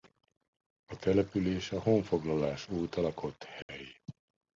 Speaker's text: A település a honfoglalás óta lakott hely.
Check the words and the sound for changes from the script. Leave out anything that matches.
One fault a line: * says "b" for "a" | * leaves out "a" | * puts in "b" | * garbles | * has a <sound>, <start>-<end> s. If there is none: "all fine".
* has a dropout, 3.6-3.7 s